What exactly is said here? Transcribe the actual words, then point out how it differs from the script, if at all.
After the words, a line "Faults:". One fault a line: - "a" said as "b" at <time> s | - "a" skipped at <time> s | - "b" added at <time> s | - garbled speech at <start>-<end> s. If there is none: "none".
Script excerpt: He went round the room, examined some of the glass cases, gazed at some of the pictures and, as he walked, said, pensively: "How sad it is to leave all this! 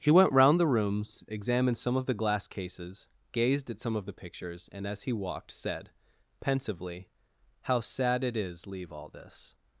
He went round the rooms, examined some of the glass cases, gazed at some of the pictures and, as he walked, said, pensively: "How sad it is leave all this!
Faults:
- "room" said as "rooms" at 0.7 s
- "to" skipped at 8.7 s